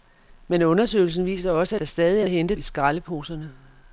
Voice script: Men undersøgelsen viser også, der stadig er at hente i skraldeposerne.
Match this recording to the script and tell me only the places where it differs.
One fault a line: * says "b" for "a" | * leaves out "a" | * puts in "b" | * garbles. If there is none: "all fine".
all fine